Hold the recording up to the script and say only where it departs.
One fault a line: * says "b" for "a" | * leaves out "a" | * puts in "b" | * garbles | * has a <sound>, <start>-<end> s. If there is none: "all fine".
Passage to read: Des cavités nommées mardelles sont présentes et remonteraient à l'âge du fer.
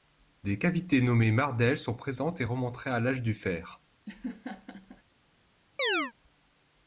* has a laugh, 4.1-5.0 s
* has a chirp, 5.8-6.1 s